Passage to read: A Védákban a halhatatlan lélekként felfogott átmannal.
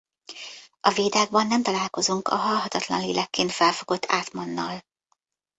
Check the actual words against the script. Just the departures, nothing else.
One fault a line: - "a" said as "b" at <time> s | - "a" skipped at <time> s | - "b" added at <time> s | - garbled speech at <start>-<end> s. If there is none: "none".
- "nem találkozunk" added at 1.5 s